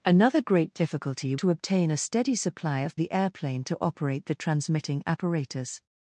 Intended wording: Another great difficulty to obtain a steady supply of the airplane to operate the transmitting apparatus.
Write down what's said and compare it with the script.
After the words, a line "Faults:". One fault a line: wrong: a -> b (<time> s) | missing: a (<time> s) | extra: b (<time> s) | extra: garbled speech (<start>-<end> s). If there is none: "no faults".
Another great difficulty to obtain a steady supply of the airplane to operate the transmitting apparatus.
Faults:
no faults